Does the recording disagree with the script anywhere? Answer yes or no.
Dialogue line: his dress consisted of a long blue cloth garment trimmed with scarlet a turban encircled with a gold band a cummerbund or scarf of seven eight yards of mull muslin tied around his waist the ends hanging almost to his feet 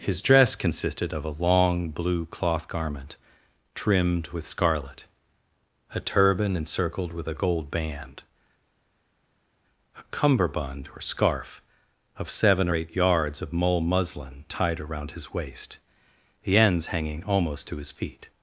no